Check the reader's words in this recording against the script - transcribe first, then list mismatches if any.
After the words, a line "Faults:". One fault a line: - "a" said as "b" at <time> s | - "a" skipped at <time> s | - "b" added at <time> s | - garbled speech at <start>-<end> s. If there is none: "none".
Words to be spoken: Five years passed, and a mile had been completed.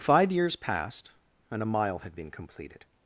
Five years passed, and a mile had been completed.
Faults:
none